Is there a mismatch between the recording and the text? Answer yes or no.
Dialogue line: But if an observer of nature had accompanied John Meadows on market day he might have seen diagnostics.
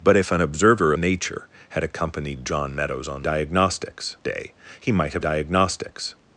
yes